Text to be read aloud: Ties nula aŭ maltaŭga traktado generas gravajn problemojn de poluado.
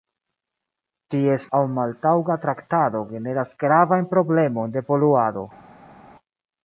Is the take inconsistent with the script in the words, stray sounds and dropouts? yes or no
yes